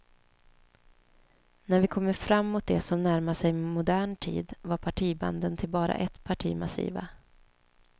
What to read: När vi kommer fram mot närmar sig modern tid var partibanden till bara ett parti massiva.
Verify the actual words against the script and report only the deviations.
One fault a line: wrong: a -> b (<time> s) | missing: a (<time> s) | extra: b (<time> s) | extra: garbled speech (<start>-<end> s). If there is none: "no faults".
extra: det som (2.6 s)